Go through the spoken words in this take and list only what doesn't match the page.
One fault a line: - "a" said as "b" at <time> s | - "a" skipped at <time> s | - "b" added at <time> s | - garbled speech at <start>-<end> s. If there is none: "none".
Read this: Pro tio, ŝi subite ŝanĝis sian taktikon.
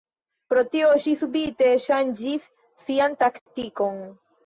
none